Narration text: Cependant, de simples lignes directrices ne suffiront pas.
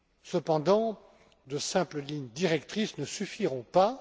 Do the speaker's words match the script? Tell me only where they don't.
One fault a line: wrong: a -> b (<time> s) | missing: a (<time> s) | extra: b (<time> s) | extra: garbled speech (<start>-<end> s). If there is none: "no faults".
no faults